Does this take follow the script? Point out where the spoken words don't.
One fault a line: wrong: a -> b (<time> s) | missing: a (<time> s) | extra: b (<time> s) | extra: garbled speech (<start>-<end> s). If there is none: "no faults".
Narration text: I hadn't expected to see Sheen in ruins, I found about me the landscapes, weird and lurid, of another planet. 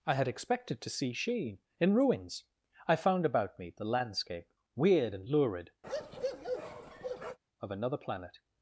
wrong: hadn't -> had (0.1 s)
wrong: landscapes -> landscape (3.9 s)